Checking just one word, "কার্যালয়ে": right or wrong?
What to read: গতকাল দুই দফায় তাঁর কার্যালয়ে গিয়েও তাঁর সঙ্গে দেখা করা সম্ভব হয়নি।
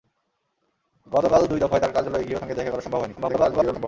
right